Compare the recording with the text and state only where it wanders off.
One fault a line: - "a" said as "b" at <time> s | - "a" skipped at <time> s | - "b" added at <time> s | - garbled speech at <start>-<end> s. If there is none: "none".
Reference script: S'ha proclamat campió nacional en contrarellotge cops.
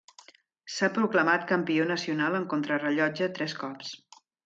- "tres" added at 3.4 s